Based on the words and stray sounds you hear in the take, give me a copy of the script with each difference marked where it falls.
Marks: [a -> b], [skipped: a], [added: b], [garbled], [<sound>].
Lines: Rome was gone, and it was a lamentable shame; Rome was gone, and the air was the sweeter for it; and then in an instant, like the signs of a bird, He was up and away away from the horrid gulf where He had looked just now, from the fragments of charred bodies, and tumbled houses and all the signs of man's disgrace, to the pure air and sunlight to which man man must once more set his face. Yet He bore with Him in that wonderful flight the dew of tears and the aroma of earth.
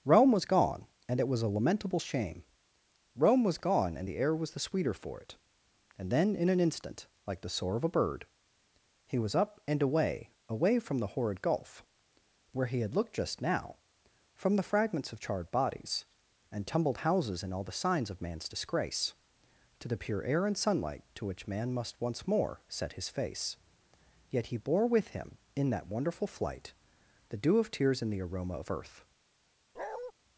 Rome was gone, and it was a lamentable shame; Rome was gone, and the air was the sweeter for it; and then in an instant, like the [signs -> soar] of a bird, He was up and away away from the horrid gulf where He had looked just now, from the fragments of charred bodies, and tumbled houses and all the signs of man's disgrace, to the pure air and sunlight to which man [skipped: man] must once more set his face. Yet He bore with Him in that wonderful flight the dew of tears and the aroma of earth. [bark]